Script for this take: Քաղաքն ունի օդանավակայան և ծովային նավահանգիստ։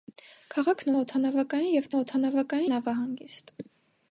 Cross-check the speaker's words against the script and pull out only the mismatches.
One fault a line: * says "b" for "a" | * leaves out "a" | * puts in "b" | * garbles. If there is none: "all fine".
* leaves out "ունի"
* says "օդանավակայան" for "ծովային"